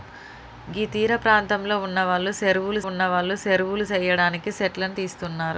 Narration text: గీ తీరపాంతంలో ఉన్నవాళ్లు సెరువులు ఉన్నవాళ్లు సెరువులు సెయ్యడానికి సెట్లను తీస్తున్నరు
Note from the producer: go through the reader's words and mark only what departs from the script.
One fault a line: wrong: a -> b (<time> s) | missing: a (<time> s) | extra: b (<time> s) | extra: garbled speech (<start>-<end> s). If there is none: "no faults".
no faults